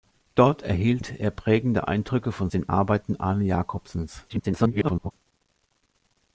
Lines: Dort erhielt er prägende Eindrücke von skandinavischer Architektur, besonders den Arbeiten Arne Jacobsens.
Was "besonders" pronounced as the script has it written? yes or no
no